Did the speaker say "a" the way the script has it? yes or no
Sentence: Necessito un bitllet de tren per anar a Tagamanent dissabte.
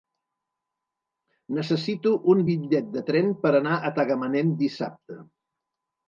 yes